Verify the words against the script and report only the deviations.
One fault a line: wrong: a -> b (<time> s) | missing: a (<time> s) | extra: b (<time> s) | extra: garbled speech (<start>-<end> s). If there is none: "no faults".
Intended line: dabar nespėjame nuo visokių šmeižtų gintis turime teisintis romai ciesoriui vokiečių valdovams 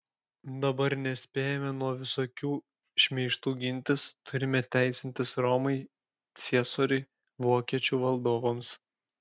no faults